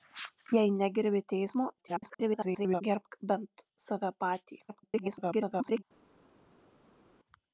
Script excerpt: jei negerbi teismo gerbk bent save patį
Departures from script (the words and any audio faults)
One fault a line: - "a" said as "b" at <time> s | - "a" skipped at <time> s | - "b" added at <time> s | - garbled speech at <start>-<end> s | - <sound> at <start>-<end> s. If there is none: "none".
- garbled speech at 1.8-2.8 s
- garbled speech at 4.7-5.8 s